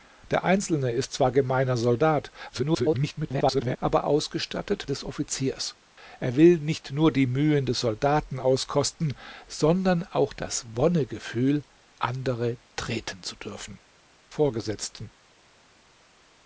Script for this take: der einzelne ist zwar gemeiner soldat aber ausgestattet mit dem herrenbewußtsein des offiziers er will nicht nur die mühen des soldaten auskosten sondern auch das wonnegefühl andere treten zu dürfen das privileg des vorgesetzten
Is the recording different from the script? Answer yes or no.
yes